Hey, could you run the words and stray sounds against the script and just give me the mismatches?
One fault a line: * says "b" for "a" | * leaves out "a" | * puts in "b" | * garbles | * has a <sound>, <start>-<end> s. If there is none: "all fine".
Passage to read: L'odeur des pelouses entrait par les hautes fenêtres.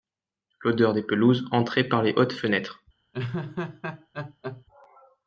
* has a laugh, 3.1-4.6 s